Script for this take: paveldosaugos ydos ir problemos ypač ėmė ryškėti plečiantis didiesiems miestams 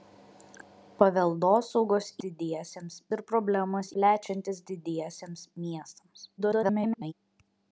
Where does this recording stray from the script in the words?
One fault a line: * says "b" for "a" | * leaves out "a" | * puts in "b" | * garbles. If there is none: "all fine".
* says "didiesiems" for "ydos"
* leaves out "ypač ėmė ryškėti"
* garbles